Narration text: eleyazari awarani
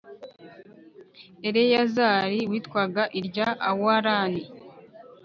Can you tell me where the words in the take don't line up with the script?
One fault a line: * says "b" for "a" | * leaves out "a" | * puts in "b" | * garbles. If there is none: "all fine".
* puts in "witwaga irya"